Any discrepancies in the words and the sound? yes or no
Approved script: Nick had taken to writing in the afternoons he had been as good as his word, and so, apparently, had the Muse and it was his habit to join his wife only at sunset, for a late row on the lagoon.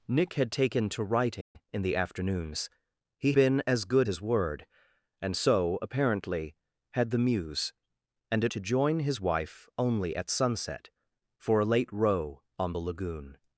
yes